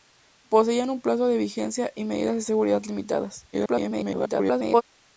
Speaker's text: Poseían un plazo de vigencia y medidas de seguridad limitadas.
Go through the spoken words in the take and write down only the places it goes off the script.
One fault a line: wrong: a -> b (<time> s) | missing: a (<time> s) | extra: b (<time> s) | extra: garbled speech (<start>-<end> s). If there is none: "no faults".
extra: garbled speech (3.5-4.8 s)